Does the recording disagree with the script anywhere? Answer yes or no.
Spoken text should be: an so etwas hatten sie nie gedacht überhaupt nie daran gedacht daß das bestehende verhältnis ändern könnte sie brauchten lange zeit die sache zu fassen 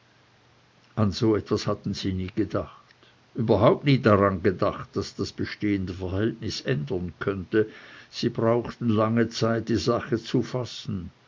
no